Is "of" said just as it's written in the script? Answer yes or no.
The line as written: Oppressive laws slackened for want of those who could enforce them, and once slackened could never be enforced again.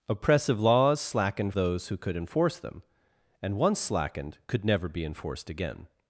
no